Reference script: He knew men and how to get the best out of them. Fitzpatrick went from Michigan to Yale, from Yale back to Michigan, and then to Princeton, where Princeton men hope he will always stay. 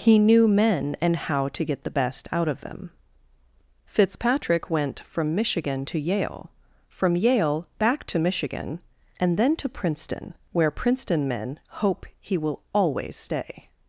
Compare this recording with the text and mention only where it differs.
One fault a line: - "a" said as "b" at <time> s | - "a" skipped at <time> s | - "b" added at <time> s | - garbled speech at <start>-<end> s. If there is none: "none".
none